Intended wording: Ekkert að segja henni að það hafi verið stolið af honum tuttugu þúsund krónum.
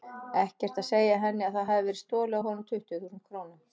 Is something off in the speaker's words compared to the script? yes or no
no